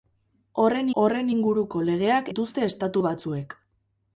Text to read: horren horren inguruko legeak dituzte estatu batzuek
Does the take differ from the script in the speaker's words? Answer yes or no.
no